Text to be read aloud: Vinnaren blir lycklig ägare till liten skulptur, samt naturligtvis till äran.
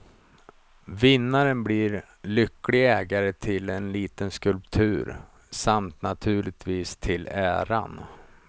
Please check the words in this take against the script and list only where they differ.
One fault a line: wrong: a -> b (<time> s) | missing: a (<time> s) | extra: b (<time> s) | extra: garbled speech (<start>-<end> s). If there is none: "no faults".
extra: en (3.7 s)